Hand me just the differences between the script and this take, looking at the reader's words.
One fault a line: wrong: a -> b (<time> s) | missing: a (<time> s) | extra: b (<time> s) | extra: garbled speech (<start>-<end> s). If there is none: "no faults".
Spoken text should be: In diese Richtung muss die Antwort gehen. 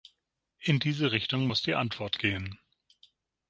no faults